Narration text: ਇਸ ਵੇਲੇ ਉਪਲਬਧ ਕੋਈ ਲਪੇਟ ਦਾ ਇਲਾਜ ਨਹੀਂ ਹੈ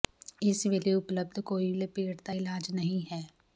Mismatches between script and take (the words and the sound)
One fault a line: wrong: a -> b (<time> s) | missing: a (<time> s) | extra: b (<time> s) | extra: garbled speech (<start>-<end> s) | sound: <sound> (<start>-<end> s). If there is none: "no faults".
no faults